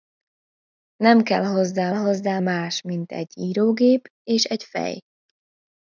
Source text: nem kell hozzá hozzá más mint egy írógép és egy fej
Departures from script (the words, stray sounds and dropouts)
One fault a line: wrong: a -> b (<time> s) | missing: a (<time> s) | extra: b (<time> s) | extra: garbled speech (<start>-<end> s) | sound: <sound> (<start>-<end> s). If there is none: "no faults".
no faults